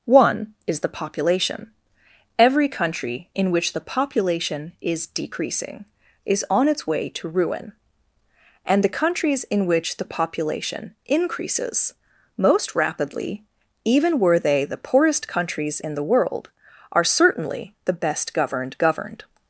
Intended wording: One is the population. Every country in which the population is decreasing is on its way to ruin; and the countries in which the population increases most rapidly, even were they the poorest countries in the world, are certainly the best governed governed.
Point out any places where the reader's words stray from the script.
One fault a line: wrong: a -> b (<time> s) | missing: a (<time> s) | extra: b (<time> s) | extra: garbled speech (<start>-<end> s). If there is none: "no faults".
no faults